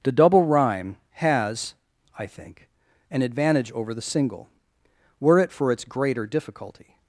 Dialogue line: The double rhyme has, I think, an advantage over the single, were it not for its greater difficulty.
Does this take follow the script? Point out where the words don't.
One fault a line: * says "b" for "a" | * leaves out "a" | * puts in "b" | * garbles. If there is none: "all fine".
* leaves out "not"